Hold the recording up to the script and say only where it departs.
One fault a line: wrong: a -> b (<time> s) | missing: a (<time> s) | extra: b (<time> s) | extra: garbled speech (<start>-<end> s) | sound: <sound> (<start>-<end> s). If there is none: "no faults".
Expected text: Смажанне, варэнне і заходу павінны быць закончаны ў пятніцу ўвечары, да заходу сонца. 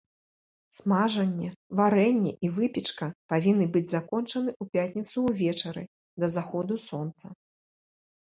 wrong: заходу -> выпечка (2.5 s)